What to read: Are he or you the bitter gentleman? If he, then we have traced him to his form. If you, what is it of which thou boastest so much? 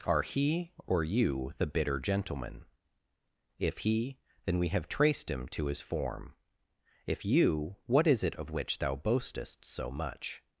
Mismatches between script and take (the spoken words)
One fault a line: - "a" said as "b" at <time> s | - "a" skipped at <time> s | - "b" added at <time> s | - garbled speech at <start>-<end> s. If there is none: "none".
none